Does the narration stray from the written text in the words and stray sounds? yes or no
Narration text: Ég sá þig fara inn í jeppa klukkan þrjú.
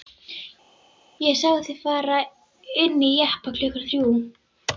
no